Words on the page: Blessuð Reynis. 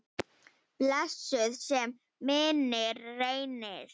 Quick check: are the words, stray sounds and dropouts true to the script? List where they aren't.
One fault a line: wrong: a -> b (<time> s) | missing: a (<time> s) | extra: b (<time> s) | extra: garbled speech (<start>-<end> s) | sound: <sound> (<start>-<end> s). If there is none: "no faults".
extra: sé minning (1.7 s)